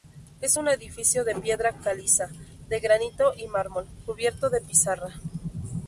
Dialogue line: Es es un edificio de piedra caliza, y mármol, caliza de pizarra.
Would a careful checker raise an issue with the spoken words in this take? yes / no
yes